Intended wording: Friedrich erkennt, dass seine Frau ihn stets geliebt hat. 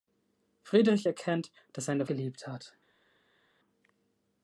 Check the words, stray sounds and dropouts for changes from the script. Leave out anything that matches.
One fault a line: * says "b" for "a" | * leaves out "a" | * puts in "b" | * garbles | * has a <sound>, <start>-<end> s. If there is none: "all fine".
* leaves out "Frau ihn stets"